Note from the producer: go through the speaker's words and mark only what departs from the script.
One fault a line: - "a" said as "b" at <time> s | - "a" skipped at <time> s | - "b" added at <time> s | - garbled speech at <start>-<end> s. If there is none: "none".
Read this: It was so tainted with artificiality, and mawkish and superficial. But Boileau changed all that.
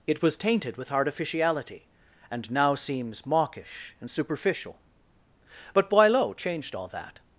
- "so" skipped at 0.3 s
- "now seems" added at 2.5 s